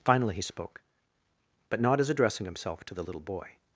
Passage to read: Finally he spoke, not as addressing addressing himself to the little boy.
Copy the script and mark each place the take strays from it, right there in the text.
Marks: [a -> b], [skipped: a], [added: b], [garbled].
Finally he spoke, [added: but] not as addressing [skipped: addressing] himself to the little boy.